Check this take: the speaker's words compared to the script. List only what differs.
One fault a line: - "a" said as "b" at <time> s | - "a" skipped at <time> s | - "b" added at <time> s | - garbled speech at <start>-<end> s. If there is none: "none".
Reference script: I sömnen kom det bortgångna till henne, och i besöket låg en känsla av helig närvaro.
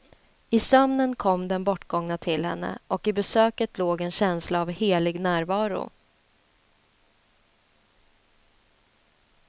- "det" said as "den" at 1.5 s